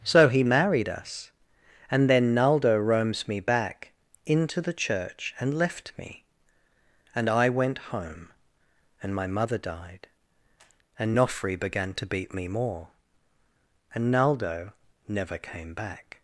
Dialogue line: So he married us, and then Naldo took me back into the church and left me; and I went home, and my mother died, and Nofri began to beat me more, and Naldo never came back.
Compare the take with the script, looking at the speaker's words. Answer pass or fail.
fail